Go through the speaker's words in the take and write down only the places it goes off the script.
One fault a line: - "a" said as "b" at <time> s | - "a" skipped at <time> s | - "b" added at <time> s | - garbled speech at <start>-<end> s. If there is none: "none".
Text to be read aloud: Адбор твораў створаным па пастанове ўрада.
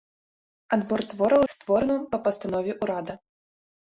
none